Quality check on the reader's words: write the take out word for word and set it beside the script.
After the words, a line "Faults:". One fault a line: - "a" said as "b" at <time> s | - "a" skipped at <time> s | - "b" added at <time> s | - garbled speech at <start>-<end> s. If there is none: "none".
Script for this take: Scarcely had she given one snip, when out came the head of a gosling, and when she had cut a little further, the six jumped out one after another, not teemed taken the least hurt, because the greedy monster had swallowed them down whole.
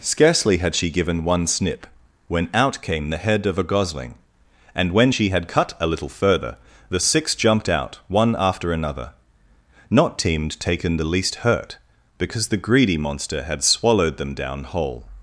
Scarcely had she given one snip, when out came the head of a gosling, and when she had cut a little further, the six jumped out one after another, not teemed taken the least hurt, because the greedy monster had swallowed them down whole.
Faults:
none